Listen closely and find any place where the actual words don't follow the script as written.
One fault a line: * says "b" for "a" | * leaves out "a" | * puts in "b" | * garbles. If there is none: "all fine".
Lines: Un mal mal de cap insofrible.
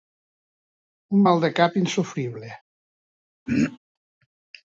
* leaves out "mal"